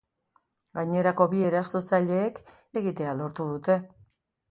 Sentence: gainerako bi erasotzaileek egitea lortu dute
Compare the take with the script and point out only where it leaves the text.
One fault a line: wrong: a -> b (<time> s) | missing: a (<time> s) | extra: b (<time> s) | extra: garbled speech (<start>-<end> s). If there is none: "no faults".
no faults